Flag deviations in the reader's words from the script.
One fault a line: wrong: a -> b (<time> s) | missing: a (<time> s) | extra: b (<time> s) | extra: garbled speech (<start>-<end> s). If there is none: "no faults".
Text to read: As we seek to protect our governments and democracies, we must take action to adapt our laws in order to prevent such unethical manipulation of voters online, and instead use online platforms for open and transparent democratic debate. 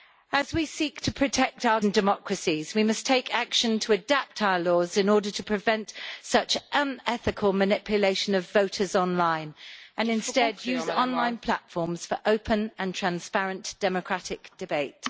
missing: governments (1.8 s)